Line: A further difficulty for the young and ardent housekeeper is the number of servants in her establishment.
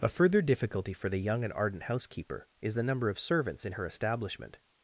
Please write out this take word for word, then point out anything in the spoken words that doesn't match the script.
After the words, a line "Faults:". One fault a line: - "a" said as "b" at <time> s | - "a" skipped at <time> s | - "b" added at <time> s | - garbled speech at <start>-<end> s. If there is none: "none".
A further difficulty for the young and ardent housekeeper is the number of servants in her establishment.
Faults:
none